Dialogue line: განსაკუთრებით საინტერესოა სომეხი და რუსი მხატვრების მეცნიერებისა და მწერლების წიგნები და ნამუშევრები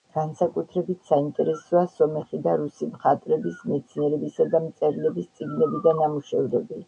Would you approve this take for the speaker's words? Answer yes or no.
yes